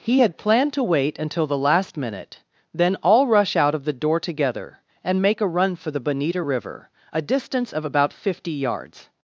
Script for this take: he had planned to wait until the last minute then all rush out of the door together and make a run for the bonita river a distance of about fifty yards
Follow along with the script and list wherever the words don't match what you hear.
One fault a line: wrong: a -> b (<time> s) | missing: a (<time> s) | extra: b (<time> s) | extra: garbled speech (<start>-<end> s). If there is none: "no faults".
no faults